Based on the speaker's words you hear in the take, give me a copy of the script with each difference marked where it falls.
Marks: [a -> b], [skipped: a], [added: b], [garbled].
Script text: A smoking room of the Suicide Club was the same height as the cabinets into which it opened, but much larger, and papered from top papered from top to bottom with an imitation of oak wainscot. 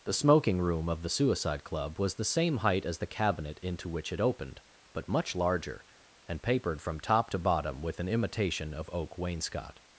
[A -> The] smoking room of the Suicide Club was the same height as the [cabinets -> cabinet] into which it opened, but much larger, and papered from top [skipped: papered from top] to bottom with an imitation of oak wainscot.